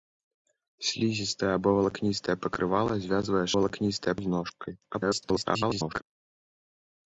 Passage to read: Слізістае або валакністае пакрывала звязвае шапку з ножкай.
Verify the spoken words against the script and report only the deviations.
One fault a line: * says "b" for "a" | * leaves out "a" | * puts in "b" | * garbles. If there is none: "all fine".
* says "валакністае" for "шапку"
* garbles